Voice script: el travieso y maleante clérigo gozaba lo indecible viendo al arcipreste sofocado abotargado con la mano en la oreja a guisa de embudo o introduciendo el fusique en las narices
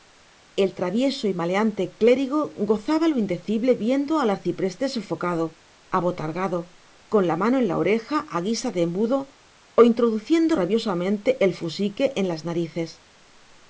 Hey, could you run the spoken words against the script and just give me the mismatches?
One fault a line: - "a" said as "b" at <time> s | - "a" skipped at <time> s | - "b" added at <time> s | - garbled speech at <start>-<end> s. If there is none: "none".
- "rabiosamente" added at 10.5 s